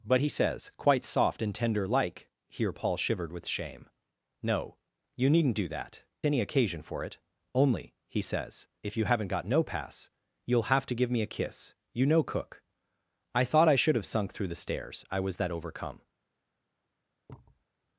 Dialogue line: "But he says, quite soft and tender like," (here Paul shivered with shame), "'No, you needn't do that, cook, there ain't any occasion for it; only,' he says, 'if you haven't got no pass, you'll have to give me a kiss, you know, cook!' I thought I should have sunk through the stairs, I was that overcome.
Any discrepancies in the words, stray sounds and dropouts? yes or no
yes